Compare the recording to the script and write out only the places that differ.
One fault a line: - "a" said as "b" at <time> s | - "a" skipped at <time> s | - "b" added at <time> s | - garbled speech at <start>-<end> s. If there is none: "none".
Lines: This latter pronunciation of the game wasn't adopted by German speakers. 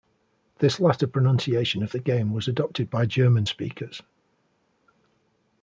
- "wasn't" said as "was" at 2.3 s